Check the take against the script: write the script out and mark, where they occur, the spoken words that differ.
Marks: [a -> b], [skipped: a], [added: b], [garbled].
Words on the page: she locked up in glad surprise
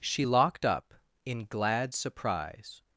she locked up in glad surprise